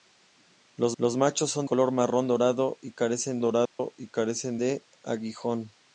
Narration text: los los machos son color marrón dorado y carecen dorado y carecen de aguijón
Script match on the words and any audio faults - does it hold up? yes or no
no